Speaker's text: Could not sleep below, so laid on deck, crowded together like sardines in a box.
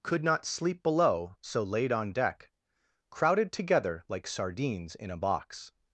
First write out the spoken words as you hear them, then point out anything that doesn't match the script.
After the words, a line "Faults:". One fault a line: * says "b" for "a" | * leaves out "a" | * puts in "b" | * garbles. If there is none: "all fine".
Could not sleep below, so laid on deck, crowded together like sardines in a box.
Faults:
all fine